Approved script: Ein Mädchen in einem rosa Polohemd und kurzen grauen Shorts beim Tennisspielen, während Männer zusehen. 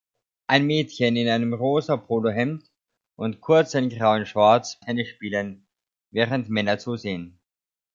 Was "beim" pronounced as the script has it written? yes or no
no